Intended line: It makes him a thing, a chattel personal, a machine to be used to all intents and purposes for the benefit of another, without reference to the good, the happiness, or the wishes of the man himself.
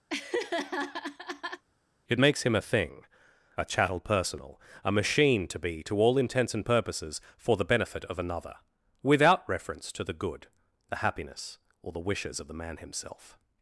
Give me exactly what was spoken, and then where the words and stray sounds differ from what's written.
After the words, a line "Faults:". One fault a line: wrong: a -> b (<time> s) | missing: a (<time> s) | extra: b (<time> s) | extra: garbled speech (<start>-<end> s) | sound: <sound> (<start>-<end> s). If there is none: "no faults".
It makes him a thing, a chattel personal, a machine to be to all intents and purposes for the benefit of another, without reference to the good, the happiness, or the wishes of the man himself.
Faults:
sound: laugh (0.1-1.6 s)
missing: used (5.8 s)